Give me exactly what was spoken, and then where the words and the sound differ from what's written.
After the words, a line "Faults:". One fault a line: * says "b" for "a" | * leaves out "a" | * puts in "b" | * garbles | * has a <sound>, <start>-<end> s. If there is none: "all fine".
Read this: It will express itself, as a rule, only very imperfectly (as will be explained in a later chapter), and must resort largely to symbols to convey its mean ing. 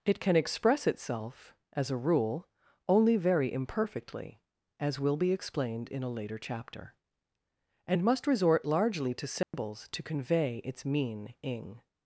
It can express itself, as a rule, only very imperfectly (as will be explained in a later chapter), and must resort largely to symbols to convey its mean ing.
Faults:
* says "can" for "will"
* has a dropout, 9.4-9.5 s